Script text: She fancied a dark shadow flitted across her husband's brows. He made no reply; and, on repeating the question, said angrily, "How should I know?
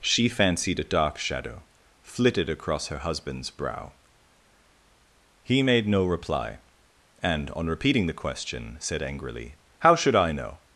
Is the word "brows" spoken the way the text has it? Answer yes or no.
no